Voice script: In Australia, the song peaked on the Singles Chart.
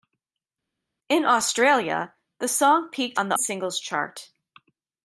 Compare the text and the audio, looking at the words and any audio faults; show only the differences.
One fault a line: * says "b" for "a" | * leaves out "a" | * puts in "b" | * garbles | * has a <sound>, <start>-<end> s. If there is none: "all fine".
all fine